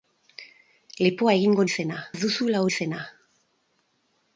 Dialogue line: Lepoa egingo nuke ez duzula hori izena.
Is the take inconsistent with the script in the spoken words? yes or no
yes